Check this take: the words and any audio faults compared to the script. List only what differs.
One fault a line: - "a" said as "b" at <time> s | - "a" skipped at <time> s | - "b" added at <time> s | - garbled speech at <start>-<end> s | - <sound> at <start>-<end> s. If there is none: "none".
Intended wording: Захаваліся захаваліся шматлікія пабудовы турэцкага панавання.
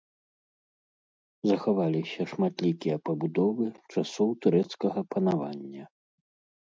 - "захаваліся" skipped at 2.2 s
- "часоў" added at 4.0 s